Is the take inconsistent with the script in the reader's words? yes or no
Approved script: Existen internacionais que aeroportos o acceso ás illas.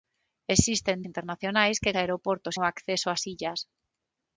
no